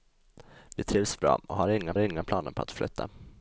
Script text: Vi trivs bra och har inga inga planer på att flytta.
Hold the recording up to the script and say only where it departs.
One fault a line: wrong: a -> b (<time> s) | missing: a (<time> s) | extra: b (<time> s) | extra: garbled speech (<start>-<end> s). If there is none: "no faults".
no faults